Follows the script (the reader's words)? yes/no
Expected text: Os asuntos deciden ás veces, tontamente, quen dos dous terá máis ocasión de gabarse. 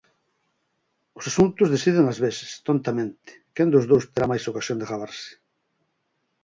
yes